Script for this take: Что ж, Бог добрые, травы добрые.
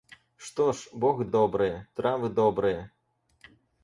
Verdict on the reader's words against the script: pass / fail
pass